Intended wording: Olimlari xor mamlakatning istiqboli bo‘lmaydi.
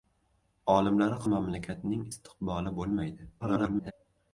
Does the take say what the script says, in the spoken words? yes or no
no